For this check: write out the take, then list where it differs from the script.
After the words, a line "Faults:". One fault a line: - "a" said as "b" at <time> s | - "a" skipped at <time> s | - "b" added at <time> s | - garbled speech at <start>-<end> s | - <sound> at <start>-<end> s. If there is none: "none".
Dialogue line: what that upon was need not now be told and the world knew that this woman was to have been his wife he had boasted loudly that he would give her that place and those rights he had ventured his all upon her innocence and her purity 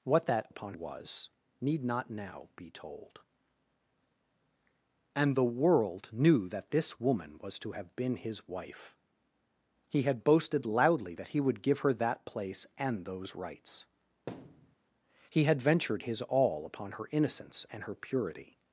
what that upon was need not now be told and the world knew that this woman was to have been his wife he had boasted loudly that he would give her that place and those rights he had ventured his all upon her innocence and her purity
Faults:
- thud at 14.3-14.8 s